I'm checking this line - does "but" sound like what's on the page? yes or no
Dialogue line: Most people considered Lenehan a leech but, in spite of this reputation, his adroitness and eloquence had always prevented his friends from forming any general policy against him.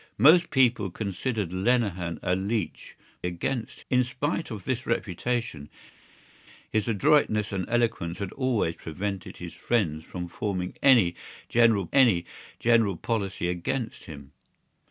no